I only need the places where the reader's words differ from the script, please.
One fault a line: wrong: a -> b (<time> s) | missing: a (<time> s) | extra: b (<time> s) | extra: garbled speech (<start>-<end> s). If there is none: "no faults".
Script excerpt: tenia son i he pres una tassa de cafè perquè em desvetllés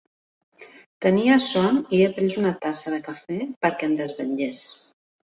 no faults